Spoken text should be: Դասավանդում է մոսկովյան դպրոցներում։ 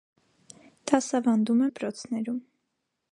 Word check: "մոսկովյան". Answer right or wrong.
wrong